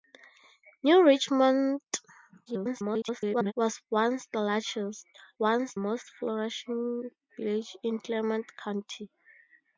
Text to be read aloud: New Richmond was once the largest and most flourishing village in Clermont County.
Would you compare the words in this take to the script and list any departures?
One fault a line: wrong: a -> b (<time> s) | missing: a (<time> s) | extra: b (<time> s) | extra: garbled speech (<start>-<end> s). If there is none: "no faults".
extra: garbled speech (2.5-3.5 s)
wrong: and -> once (5.4 s)